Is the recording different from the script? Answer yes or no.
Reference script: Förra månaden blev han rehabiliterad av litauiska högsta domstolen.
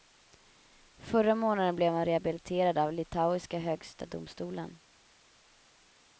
no